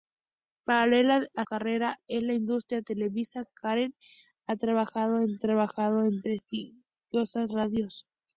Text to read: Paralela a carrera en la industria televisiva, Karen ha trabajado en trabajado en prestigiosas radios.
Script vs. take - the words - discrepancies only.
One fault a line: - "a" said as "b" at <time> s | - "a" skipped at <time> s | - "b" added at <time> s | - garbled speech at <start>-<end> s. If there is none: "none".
none